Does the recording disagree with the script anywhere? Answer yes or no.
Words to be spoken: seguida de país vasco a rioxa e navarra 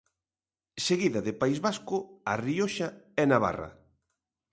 no